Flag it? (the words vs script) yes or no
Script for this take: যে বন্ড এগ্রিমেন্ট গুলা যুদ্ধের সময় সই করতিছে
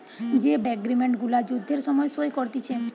yes